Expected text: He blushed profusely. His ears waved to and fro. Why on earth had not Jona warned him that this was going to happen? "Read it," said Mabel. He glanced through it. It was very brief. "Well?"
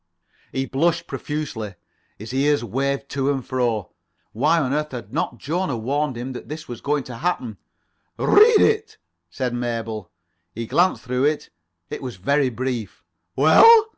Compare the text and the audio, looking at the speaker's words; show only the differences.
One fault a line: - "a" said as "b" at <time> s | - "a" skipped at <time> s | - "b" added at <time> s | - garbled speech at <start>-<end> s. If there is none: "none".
none